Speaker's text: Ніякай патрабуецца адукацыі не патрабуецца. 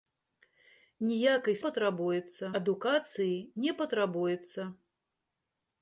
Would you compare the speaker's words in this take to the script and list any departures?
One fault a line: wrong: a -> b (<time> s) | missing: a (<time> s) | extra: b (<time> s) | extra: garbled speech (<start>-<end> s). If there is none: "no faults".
no faults